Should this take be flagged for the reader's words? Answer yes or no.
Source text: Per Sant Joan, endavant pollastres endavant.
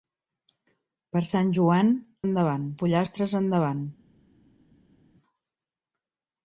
no